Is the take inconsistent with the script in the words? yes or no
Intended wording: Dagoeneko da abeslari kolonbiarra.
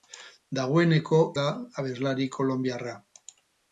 no